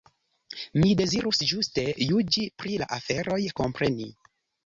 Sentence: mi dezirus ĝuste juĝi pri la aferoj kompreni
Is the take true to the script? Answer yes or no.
yes